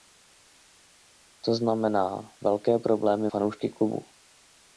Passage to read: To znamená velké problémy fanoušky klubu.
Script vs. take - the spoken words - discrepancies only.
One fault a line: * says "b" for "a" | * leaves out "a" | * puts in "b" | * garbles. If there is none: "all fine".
all fine